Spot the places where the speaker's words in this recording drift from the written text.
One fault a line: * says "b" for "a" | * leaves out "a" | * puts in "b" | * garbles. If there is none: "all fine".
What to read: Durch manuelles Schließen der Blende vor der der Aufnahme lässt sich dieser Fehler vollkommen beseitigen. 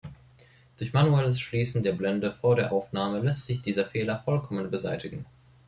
* leaves out "der"